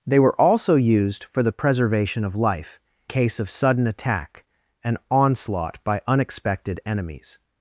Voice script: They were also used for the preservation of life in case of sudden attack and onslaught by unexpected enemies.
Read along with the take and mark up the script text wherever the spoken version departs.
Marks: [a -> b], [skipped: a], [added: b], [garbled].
They were also used for the preservation of life [skipped: in] case of sudden attack and onslaught by unexpected enemies.